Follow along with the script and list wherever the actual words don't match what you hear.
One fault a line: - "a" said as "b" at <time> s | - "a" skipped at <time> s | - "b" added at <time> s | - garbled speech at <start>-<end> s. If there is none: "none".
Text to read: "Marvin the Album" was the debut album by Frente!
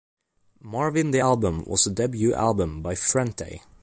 none